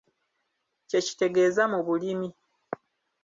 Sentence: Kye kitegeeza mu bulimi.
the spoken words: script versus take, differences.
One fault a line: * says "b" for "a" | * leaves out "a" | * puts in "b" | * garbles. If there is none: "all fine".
all fine